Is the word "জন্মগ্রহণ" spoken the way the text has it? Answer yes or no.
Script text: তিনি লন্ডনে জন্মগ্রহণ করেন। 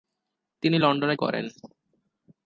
no